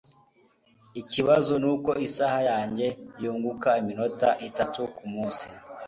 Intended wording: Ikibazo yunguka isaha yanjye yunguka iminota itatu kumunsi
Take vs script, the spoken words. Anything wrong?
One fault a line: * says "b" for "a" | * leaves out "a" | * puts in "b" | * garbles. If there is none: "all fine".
* says "nuko" for "yunguka"